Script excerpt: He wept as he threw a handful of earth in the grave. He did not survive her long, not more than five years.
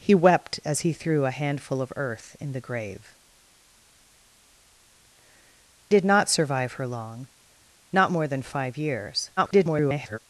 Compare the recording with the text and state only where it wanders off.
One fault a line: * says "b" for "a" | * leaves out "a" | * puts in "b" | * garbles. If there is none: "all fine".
* leaves out "He"
* garbles